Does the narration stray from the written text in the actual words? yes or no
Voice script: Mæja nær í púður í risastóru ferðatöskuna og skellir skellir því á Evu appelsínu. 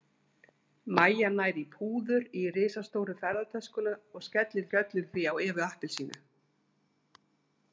no